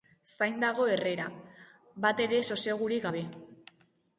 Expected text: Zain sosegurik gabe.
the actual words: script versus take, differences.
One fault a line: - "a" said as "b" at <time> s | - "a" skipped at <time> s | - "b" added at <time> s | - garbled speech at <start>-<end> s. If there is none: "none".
- "dago Herrera batere" added at 0.6 s